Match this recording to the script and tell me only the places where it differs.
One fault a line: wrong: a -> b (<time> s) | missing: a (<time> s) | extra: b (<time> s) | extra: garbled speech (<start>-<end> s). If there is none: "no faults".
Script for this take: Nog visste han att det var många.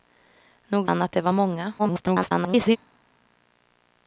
missing: visste (0.9 s)
extra: garbled speech (1.8-2.8 s)